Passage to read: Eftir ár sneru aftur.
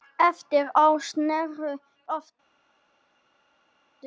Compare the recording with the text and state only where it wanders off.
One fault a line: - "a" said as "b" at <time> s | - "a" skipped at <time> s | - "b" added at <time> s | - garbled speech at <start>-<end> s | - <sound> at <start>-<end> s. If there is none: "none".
none